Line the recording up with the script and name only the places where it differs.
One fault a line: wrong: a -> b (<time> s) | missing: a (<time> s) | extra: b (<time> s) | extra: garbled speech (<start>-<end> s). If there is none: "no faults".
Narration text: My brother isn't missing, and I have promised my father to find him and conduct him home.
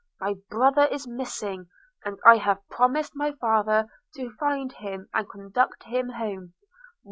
wrong: isn't -> is (0.9 s)